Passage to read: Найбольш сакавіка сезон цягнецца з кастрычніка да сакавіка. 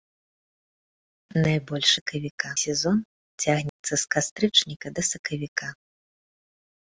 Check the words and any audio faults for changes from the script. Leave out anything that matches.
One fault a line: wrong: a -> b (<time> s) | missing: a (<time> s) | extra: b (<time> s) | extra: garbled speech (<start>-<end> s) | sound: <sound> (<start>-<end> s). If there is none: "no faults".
sound: dropout (3.7-3.8 s)